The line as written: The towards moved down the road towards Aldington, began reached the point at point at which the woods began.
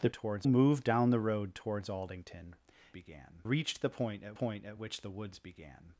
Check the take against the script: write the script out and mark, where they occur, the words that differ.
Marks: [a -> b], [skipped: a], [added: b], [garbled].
The towards moved down the road towards Aldington, began reached the point at point at which the woods began.